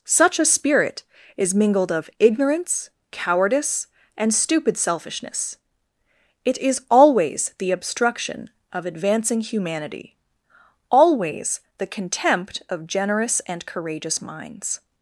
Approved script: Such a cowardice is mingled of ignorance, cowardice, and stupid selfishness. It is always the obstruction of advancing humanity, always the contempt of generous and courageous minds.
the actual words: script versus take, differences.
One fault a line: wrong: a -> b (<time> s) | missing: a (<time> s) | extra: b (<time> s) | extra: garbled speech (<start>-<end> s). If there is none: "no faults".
wrong: cowardice -> spirit (0.5 s)